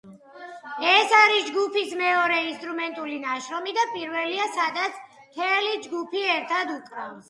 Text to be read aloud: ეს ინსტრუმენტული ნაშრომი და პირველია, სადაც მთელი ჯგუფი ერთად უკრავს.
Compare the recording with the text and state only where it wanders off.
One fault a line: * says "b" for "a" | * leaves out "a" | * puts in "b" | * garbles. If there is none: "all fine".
* puts in "არის ჯგუფის მეორე"